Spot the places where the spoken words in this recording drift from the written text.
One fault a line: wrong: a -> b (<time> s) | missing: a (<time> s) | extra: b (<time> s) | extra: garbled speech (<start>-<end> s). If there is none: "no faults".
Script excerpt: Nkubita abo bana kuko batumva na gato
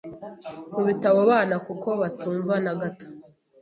no faults